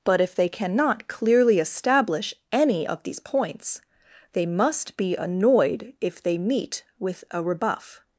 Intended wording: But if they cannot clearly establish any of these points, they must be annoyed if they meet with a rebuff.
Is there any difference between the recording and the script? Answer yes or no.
no